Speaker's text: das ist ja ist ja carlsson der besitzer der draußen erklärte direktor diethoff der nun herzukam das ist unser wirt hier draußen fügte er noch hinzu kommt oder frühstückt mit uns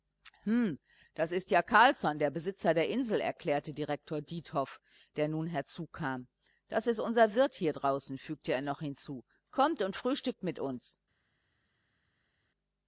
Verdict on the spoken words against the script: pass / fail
fail